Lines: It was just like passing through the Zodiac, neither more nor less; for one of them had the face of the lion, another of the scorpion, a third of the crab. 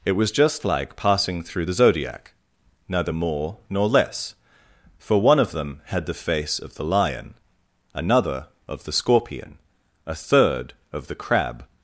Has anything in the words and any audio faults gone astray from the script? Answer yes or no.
no